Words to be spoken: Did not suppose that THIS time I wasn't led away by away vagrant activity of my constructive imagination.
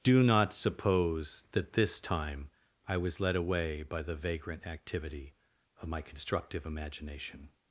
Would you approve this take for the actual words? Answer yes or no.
no